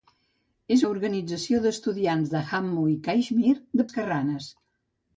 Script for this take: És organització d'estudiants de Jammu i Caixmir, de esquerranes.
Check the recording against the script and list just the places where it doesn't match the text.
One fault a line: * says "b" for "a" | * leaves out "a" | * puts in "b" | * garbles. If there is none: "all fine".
all fine